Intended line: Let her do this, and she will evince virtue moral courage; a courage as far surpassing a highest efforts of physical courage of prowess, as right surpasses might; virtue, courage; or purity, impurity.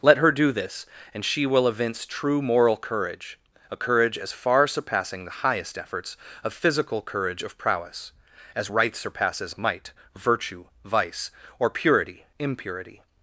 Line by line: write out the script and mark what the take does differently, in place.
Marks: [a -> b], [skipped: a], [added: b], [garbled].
Let her do this, and she will evince [virtue -> true] moral courage; a courage as far surpassing [a -> the] highest efforts of physical courage of prowess, as right surpasses might; virtue, [courage; -> vice] or purity, impurity.